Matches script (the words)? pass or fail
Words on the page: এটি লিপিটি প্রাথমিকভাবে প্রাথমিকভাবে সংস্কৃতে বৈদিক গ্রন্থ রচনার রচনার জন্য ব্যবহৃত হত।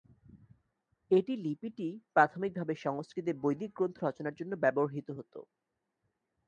fail